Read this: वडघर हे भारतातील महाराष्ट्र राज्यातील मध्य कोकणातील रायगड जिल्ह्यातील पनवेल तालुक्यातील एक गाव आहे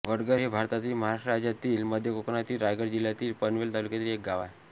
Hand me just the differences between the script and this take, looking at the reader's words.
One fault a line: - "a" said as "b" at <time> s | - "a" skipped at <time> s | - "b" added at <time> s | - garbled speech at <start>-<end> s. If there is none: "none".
none